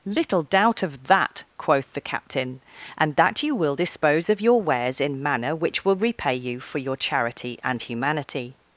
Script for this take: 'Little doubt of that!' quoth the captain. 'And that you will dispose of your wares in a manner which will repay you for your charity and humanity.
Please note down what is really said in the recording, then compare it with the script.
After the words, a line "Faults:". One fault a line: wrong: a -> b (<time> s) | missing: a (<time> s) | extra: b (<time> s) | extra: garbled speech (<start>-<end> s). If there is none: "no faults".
'Little doubt of that!' quoth the captain. 'And that you will dispose of your wares in manner which will repay you for your charity and humanity.
Faults:
missing: a (5.2 s)